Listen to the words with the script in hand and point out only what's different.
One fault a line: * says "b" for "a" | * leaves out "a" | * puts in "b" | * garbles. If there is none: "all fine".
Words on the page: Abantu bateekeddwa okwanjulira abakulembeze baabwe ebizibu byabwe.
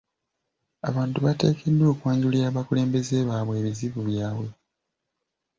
all fine